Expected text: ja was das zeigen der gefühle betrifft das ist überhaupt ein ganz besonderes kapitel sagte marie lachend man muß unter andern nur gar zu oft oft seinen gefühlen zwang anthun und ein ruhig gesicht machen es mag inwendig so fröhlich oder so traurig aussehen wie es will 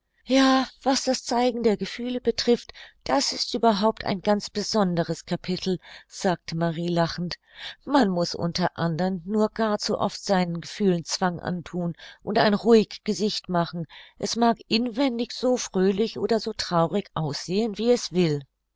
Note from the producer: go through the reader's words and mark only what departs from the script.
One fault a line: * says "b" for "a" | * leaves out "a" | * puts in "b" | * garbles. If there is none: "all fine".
* leaves out "oft"